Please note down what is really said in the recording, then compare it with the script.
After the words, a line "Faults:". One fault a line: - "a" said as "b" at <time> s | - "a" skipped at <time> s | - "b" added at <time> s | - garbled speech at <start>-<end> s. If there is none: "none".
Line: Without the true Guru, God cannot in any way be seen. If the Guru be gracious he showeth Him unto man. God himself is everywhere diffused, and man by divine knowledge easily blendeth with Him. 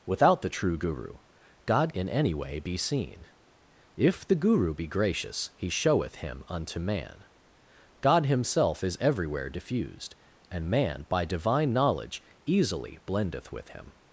Without the true Guru, God in any way be seen. If the Guru be gracious he showeth Him unto man. God himself is everywhere diffused, and man by divine knowledge easily blendeth with Him.
Faults:
- "cannot" skipped at 1.9 s